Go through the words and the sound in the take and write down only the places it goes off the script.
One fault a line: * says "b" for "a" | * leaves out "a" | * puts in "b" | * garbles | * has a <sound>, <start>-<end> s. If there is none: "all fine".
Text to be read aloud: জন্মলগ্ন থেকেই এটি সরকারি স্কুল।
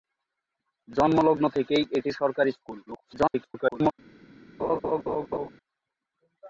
* garbles
* has a laugh, 4.6-5.5 s